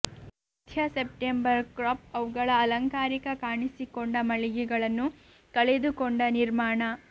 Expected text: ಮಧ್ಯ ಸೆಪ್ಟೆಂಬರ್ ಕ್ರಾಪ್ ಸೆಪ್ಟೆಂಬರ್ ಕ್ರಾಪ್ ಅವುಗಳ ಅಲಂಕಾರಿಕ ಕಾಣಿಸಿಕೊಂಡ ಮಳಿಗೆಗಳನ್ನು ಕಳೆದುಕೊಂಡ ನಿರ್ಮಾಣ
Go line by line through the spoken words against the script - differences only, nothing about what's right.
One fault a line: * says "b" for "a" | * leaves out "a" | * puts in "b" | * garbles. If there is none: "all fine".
* leaves out "ಸೆಪ್ಟೆಂಬರ್ ಕ್ರಾಪ್"